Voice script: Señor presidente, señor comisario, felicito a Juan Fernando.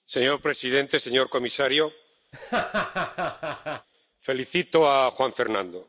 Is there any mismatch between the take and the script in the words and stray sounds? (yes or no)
yes